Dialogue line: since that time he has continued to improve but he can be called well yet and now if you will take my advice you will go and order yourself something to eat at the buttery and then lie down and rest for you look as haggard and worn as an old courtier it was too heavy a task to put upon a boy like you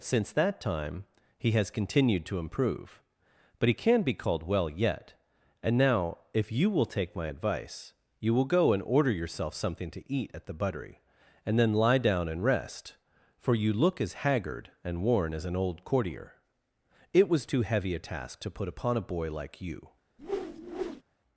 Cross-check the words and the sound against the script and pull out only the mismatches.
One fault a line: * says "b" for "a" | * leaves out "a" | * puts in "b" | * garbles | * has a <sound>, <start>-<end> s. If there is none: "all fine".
* has a whoosh, 20.2-21.0 s